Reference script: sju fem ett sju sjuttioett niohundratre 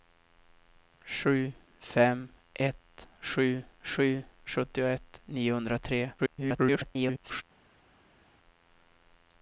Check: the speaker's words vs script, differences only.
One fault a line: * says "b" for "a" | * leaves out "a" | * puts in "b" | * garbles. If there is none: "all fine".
* puts in "sju"
* garbles